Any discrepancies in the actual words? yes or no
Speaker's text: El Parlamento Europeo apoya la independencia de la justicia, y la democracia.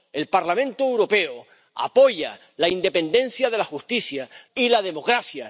no